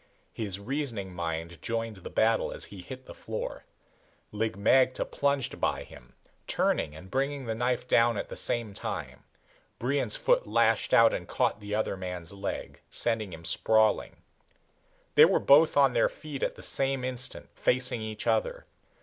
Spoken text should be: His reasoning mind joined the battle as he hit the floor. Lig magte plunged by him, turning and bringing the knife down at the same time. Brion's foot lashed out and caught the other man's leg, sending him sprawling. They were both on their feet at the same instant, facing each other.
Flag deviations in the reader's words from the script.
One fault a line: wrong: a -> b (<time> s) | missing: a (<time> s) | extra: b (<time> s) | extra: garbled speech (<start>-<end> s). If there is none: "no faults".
no faults